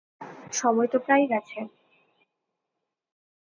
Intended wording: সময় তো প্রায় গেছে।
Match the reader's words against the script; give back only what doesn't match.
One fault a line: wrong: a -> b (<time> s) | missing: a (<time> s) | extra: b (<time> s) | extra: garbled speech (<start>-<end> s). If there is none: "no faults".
no faults